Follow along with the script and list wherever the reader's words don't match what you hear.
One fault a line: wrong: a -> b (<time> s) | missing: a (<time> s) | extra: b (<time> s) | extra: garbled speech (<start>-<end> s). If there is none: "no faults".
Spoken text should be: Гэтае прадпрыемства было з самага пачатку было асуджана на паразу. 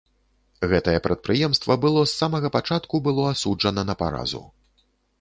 no faults